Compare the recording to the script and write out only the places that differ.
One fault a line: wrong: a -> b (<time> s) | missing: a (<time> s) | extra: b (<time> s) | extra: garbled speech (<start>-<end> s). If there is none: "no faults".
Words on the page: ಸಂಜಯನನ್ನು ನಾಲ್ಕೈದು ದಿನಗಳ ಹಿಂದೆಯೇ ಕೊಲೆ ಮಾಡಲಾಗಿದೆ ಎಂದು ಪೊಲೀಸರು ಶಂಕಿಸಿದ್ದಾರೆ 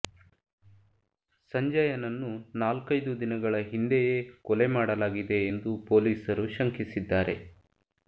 no faults